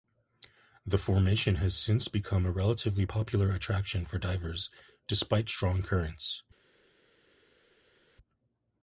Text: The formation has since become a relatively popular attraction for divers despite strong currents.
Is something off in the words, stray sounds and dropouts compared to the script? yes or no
no